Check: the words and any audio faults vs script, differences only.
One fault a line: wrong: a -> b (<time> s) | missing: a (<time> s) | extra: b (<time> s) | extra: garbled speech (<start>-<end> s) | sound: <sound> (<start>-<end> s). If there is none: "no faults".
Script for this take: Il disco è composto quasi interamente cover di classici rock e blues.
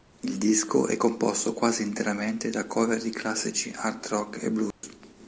extra: da (2.5 s)
extra: hard (3.7 s)
sound: dropout (4.7-4.8 s)